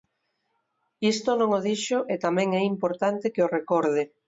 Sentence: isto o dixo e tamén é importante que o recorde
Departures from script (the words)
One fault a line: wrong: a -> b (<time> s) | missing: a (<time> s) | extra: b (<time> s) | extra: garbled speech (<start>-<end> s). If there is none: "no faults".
extra: non (1.4 s)